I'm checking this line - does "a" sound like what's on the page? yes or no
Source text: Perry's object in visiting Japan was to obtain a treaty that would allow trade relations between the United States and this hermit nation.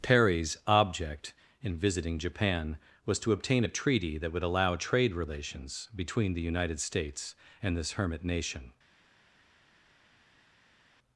yes